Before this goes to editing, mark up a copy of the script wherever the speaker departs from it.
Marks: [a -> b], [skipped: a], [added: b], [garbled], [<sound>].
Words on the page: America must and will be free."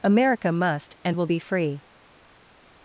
America must and will be free."